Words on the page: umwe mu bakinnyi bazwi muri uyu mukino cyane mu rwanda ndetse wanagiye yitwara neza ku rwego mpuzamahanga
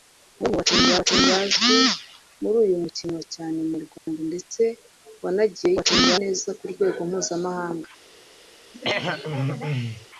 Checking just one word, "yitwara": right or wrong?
wrong